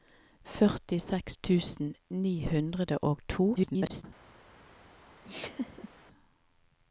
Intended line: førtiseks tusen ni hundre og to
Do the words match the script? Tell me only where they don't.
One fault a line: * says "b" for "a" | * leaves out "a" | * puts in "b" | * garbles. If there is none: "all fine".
* garbles